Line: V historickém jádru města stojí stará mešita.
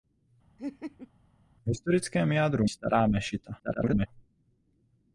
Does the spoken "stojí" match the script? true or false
false